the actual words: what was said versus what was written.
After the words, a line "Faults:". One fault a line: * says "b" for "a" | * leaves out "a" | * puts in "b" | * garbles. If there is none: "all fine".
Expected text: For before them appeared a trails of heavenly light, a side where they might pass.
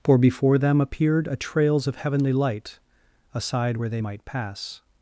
For before them appeared a trails of heavenly light, a side where they might pass.
Faults:
all fine